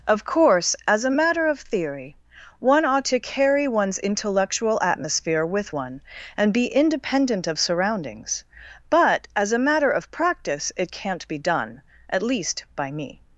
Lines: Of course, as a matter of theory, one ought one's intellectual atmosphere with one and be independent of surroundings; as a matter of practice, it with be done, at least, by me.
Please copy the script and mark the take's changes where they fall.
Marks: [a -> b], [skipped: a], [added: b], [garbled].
Of course, as a matter of theory, one ought [added: to carry] one's intellectual atmosphere with one and be independent of surroundings; [added: but] as a matter of practice, it [with -> can't] be done, at least, by me.